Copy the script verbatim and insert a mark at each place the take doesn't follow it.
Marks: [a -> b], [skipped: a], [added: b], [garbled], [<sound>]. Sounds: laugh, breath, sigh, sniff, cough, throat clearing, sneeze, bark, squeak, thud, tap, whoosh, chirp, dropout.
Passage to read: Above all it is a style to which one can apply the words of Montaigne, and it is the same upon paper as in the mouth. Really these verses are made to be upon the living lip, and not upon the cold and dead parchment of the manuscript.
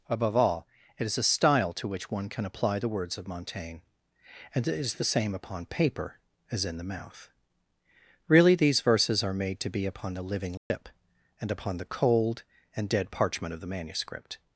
Above all it is a style to which one can apply the words of Montaigne, and it is the same upon paper as in the mouth. Really these verses are made to be upon the living lip, [dropout] and [skipped: not] upon the cold and dead parchment of the manuscript.